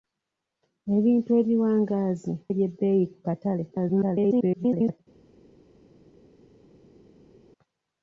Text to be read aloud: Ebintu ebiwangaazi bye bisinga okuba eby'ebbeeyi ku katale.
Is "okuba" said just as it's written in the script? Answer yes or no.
no